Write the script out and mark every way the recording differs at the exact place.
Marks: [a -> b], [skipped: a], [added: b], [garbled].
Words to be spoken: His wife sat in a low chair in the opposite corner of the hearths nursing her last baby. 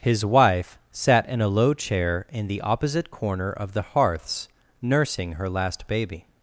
His wife sat in a low chair in the opposite corner of the hearths nursing her last baby.